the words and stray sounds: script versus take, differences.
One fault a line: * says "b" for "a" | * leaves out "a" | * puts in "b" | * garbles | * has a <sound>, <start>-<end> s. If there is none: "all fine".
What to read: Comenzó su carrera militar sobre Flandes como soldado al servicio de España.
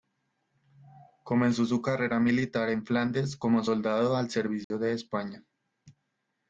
* says "en" for "sobre"
* has a dropout, 4.6-4.7 s